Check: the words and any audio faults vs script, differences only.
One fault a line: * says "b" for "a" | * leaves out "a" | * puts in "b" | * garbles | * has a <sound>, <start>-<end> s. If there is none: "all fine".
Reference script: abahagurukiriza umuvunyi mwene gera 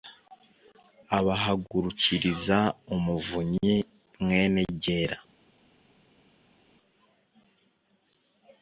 all fine